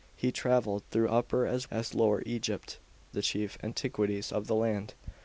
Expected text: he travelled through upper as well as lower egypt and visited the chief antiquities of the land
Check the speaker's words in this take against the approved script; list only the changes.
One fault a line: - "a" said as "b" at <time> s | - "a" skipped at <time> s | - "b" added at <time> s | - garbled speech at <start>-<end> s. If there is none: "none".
- "well" skipped at 1.7 s
- "and visited" skipped at 2.8 s